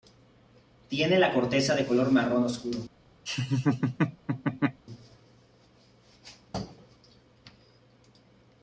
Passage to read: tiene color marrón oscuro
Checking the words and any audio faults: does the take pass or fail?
fail